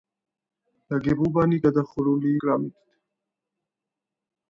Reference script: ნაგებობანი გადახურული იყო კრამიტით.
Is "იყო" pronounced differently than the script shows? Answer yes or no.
yes